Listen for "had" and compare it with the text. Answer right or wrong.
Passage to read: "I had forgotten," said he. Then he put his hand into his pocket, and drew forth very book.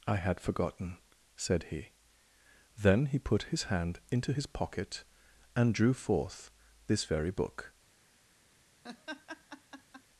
right